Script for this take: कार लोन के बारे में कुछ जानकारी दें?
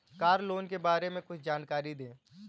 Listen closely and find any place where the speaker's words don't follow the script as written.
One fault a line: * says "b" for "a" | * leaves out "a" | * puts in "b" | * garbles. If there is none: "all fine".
all fine